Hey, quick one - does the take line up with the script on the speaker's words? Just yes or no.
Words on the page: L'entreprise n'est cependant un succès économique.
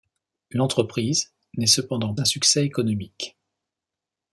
yes